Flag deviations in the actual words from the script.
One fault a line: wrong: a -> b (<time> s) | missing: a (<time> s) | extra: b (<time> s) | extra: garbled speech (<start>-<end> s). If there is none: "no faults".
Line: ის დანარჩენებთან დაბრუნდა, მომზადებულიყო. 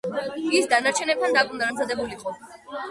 no faults